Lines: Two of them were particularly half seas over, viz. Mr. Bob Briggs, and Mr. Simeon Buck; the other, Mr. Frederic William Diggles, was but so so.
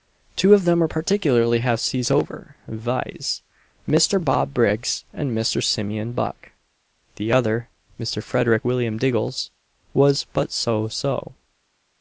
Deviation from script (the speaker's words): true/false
false